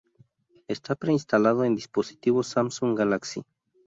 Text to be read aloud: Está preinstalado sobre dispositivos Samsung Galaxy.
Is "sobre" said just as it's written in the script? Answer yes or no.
no